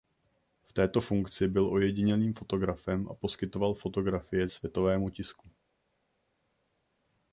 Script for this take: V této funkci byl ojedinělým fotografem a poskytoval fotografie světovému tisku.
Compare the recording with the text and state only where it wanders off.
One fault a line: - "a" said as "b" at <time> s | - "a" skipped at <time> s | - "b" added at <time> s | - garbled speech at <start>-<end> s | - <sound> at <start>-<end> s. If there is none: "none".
none